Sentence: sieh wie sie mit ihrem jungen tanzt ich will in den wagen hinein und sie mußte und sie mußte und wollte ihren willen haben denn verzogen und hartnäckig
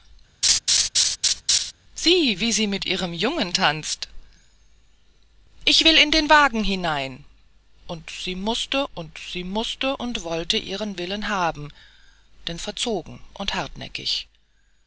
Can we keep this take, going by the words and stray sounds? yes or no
no